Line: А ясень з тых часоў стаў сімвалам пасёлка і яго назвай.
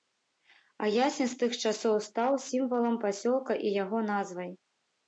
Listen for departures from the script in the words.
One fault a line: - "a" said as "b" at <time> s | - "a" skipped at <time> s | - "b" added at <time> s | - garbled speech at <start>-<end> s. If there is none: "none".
none